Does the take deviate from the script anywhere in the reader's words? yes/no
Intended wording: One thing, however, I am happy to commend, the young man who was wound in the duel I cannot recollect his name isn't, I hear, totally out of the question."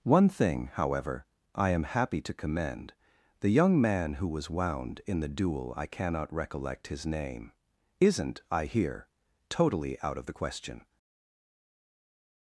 no